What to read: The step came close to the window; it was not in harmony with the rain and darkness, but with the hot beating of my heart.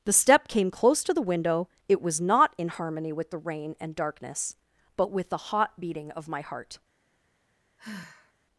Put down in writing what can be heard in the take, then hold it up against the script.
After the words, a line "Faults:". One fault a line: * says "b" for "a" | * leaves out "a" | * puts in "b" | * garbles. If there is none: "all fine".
The step came close to the window; it was not in harmony with the rain and darkness, but with the hot beating of my heart.
Faults:
all fine